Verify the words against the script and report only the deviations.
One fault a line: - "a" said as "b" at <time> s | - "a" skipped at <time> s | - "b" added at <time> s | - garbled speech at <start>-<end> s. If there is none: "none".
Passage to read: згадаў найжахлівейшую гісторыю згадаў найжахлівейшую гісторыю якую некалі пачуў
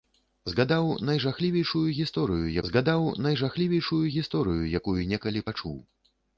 none